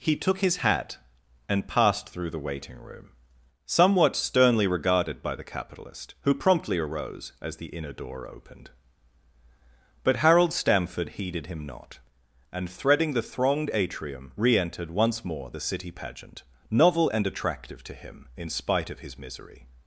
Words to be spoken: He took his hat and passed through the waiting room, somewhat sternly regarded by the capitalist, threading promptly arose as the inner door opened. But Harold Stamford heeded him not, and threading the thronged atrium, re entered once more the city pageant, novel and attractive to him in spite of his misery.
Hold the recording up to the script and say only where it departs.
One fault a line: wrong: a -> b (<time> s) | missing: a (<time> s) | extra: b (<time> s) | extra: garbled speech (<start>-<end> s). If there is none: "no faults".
wrong: threading -> who (6.2 s)